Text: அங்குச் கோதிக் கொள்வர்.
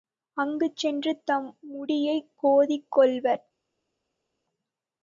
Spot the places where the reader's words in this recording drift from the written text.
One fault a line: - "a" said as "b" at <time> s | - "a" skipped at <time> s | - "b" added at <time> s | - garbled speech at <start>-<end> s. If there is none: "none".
- "சென்று தம் முடியைக்" added at 0.8 s